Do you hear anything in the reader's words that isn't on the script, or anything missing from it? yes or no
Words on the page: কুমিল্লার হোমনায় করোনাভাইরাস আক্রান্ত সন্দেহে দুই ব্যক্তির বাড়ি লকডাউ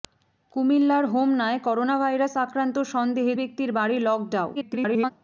yes